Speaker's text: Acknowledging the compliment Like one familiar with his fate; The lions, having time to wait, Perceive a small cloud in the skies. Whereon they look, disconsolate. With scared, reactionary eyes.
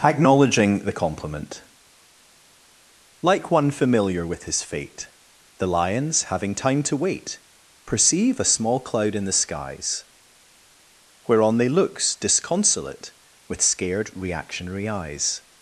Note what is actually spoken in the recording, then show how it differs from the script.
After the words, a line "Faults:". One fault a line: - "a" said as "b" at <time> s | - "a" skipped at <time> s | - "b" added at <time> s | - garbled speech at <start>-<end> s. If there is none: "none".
Acknowledging the compliment Like one familiar with his fate; The lions, having time to wait, Perceive a small cloud in the skies. Whereon they looks, disconsolate. With scared, reactionary eyes.
Faults:
- "look" said as "looks" at 11.7 s